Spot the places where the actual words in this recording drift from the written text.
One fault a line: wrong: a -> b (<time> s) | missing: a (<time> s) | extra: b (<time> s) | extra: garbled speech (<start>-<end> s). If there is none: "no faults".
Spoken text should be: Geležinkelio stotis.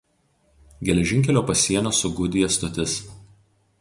extra: pasienio su Gudija (1.5 s)